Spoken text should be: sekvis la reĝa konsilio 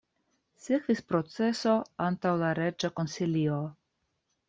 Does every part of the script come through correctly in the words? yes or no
no